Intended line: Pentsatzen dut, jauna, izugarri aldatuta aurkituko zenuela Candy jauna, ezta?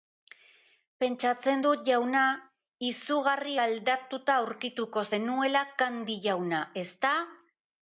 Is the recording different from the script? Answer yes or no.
no